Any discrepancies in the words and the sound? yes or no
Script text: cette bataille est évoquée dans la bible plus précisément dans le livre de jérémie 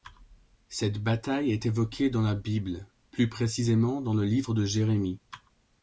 no